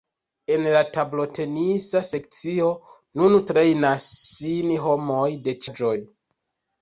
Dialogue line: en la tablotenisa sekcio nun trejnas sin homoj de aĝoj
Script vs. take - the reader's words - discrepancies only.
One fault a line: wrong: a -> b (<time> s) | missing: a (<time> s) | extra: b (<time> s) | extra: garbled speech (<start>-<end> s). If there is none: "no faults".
no faults